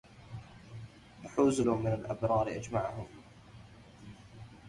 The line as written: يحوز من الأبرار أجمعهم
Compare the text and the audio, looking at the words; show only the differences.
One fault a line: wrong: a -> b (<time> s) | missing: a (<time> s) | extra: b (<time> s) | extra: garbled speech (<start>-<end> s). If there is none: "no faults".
no faults